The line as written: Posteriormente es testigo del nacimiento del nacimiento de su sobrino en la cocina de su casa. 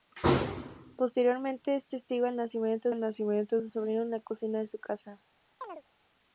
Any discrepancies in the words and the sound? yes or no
yes